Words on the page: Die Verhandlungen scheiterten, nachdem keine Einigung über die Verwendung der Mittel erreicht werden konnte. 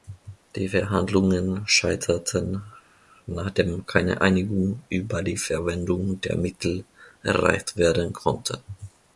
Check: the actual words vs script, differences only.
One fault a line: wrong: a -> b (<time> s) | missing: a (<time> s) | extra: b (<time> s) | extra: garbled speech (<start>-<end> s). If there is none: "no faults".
no faults